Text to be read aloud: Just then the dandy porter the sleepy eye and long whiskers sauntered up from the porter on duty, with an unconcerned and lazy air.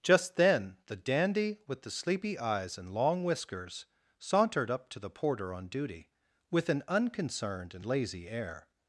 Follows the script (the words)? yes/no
no